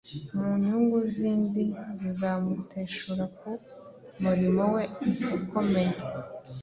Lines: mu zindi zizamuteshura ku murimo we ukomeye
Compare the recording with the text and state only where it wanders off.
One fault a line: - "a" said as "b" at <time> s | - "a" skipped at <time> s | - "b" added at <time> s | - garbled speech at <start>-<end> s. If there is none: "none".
- "nyungu" added at 0.7 s